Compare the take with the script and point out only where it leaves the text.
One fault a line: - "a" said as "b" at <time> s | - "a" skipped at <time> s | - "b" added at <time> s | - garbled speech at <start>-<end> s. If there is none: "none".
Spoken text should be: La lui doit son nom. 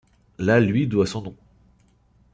none